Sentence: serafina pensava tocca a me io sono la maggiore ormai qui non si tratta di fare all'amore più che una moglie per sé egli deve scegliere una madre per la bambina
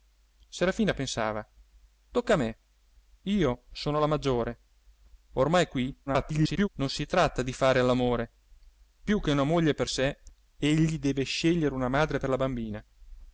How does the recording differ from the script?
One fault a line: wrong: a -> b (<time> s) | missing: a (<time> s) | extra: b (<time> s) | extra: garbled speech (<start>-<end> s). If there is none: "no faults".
extra: garbled speech (6.1-6.7 s)